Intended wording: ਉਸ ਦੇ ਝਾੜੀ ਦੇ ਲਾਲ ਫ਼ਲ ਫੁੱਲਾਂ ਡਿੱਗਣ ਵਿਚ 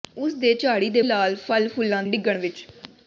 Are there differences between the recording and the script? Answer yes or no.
no